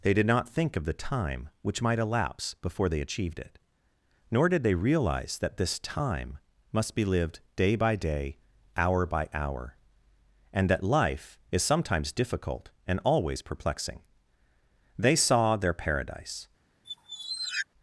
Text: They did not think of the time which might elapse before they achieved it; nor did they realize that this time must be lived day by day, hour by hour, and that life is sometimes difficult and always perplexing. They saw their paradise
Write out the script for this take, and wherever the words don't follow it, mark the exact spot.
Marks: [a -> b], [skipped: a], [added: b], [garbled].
They did not think of the time which might elapse before they achieved it; nor did they realize that this time must be lived day by day, hour by hour, and that life is sometimes difficult and always perplexing. They saw their paradise